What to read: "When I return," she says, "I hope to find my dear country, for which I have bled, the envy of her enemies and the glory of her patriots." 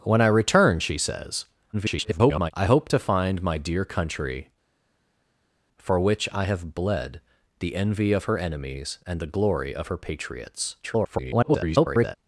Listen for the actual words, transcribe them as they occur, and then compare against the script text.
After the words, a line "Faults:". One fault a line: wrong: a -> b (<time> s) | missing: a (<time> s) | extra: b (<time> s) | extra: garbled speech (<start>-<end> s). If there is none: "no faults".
"When I return," she says, [garbled] "I hope to find my dear country, for which I have bled, the envy of her enemies and the glory of her patriots." [garbled]
Faults:
extra: garbled speech (1.7-2.5 s)
extra: garbled speech (10.8-12.2 s)